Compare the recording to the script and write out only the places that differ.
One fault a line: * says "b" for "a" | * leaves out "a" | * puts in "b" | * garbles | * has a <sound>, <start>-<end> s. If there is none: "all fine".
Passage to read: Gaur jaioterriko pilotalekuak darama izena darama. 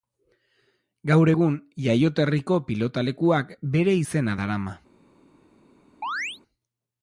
* puts in "egun"
* says "bere" for "darama"
* has a chirp, 6.0-6.4 s